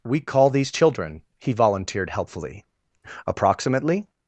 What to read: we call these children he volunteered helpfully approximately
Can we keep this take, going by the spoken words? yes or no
yes